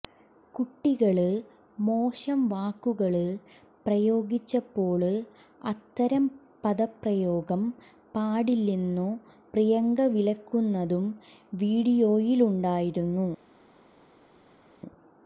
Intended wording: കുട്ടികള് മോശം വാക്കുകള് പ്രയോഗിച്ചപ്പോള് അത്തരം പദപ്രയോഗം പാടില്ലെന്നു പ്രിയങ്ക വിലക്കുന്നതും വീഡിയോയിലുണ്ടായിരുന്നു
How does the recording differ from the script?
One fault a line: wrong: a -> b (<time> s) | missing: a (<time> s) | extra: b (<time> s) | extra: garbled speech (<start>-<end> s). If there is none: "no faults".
no faults